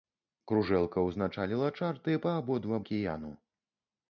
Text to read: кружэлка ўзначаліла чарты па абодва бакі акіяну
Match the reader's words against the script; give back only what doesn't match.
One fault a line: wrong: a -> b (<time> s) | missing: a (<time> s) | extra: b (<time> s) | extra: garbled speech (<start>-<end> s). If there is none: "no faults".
missing: бакі (2.8 s)